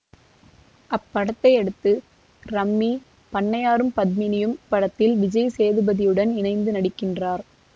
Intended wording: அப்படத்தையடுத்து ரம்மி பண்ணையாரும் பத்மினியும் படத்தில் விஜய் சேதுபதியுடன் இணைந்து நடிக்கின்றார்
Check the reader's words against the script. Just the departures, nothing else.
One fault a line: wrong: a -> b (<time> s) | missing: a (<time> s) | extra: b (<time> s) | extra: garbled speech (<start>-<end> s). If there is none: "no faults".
no faults